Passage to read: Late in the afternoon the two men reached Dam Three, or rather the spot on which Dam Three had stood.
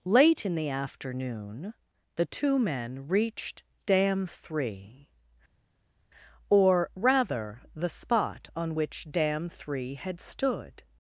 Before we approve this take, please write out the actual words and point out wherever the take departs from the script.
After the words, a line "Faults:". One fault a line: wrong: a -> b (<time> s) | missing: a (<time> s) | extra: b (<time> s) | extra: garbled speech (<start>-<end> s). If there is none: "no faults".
Late in the afternoon the two men reached Dam Three, or rather the spot on which Dam Three had stood.
Faults:
no faults